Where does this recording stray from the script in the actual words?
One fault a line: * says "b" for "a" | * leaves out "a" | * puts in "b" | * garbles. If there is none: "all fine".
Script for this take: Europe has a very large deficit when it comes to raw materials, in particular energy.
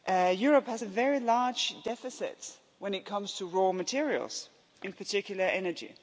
all fine